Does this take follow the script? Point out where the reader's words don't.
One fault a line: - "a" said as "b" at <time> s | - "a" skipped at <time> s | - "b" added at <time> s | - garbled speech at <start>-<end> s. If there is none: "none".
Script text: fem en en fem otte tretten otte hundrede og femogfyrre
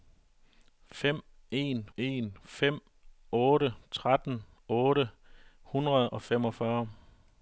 none